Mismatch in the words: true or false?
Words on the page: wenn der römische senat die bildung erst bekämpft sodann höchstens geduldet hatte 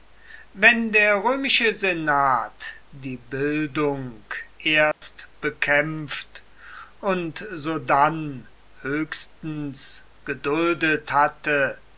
true